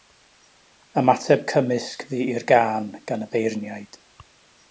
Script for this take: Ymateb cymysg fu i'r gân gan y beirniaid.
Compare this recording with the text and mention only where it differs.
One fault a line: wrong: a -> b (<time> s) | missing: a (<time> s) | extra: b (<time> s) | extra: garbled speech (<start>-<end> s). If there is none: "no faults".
no faults